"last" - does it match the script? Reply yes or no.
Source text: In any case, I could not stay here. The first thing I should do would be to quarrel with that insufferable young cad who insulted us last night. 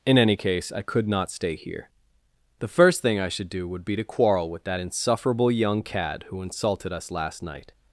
yes